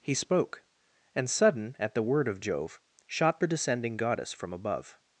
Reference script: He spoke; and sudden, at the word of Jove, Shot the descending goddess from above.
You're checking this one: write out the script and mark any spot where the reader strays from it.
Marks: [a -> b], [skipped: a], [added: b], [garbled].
He spoke; and sudden, at the word of Jove, Shot the descending goddess from above.